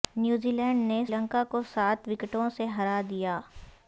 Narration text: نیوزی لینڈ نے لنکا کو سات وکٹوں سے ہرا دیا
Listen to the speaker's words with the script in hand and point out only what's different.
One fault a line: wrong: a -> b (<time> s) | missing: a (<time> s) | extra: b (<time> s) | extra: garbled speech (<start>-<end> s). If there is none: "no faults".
no faults